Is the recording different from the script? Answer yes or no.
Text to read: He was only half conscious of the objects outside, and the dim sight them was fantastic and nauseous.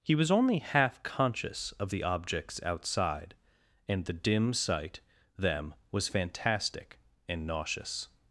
no